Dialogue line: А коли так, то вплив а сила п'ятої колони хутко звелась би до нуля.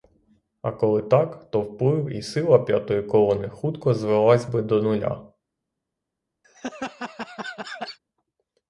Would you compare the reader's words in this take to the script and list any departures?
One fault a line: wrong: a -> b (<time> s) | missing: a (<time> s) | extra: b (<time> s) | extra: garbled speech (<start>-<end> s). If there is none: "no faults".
wrong: а -> і (2.1 s)